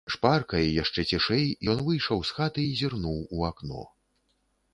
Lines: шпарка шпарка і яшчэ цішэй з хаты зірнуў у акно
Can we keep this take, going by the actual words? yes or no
no